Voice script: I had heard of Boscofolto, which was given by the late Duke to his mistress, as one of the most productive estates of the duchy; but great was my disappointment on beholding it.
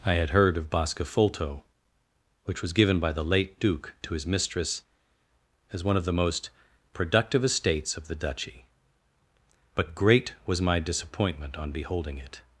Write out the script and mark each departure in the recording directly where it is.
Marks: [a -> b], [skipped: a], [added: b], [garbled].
I had heard of Boscofolto, which was given by the late Duke to his mistress, as one of the most productive estates of the duchy; but great was my disappointment on beholding it.